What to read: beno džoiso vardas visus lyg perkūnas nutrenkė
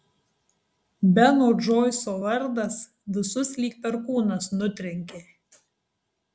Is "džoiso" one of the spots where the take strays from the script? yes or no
no